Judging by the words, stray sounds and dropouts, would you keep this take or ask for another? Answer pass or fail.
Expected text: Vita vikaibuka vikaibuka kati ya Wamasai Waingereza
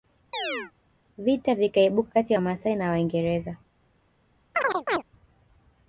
fail